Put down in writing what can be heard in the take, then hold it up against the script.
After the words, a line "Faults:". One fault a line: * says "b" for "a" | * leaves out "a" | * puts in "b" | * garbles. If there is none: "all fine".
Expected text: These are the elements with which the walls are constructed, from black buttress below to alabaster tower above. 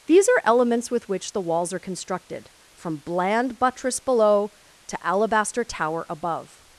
These are elements with which the walls are constructed, from bland buttress below to alabaster tower above.
Faults:
* leaves out "the"
* says "bland" for "black"